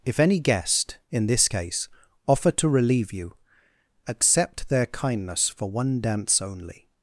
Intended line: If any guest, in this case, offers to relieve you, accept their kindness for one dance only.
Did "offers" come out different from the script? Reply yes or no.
yes